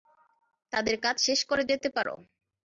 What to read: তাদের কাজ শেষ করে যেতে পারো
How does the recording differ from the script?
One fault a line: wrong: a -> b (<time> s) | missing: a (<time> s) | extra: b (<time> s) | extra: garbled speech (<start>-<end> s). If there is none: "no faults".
no faults